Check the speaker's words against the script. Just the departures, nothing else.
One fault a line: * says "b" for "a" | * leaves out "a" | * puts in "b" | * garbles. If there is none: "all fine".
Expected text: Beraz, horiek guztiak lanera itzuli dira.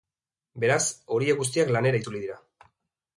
all fine